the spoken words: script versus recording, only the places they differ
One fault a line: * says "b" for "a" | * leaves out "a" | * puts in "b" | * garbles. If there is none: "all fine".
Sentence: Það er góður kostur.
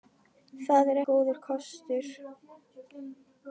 all fine